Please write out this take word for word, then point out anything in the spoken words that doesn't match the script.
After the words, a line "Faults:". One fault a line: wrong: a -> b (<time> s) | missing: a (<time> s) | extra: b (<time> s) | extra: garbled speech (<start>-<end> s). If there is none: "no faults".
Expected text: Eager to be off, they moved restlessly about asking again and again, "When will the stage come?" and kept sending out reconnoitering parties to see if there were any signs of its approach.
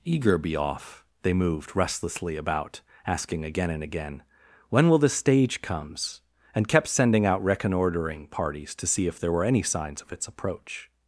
Eager be off, they moved restlessly about asking again and again, "When will the stage comes?" and kept sending out reconnoitering parties to see if there were any signs of its approach.
Faults:
missing: to (0.4 s)
wrong: come -> comes (5.6 s)